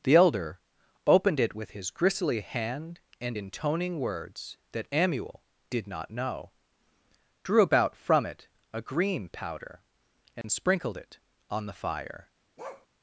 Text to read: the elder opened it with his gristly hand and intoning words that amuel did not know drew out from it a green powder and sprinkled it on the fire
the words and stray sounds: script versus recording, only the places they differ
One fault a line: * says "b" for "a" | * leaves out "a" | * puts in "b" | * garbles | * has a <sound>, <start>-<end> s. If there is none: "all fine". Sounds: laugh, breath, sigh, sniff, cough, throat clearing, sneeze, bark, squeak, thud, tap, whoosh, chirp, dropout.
* says "about" for "out"
* has a dropout, 10.4-10.4 s
* has a bark, 12.6-12.9 s